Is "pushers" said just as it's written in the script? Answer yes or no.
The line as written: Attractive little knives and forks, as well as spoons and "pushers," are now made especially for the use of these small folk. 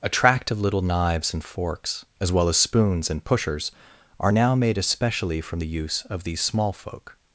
yes